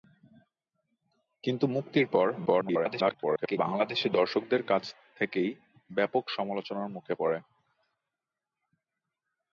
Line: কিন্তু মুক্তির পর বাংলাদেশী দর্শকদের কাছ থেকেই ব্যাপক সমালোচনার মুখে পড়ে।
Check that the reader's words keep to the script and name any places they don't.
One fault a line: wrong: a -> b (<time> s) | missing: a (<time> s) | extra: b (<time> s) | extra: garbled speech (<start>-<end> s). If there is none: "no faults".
extra: garbled speech (2.5-3.6 s)